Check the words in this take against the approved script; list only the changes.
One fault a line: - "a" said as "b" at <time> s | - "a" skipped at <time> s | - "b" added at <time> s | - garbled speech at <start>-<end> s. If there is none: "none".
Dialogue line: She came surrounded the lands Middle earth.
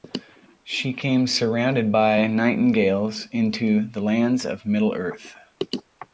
- "by nightingales into" added at 1.9 s
- "of" added at 4.4 s